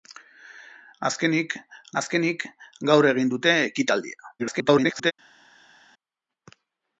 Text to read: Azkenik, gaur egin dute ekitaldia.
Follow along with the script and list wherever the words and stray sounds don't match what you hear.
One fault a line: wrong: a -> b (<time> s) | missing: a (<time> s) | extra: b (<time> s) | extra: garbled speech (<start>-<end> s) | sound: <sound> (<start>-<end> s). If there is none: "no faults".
extra: azkenik (2.0 s)
extra: garbled speech (4.4-5.1 s)